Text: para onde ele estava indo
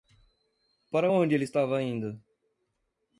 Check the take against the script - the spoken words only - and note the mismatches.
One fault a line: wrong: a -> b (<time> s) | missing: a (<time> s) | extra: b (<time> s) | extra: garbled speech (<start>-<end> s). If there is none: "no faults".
no faults